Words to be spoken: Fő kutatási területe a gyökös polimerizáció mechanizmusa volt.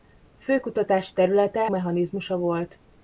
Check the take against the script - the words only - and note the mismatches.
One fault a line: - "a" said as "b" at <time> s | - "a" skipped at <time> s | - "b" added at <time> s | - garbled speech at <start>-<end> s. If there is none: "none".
- "a gyökös polimerizáció" skipped at 1.7 s